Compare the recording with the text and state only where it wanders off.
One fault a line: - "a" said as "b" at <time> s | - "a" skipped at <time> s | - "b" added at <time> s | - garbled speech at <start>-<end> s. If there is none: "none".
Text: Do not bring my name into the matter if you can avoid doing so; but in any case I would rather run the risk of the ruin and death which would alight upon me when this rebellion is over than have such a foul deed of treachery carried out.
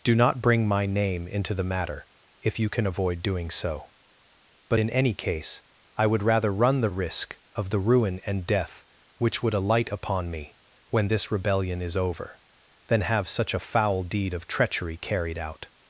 none